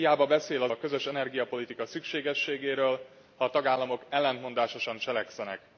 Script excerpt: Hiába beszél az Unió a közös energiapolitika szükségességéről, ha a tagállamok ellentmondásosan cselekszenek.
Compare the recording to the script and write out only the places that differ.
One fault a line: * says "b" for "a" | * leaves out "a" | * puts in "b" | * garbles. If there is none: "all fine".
* leaves out "Unió"